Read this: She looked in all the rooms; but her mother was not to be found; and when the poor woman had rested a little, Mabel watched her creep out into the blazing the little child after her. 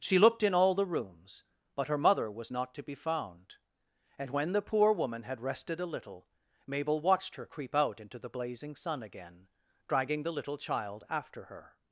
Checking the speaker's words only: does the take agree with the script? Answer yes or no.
no